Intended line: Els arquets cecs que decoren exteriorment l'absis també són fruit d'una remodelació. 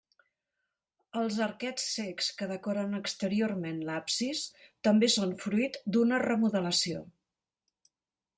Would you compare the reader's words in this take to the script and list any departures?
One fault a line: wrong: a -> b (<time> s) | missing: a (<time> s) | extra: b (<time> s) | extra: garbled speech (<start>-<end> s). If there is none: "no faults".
no faults